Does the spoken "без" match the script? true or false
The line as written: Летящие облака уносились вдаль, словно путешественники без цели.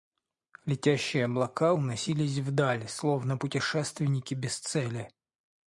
true